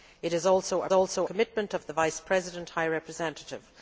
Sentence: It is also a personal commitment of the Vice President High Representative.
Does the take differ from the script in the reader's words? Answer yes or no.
yes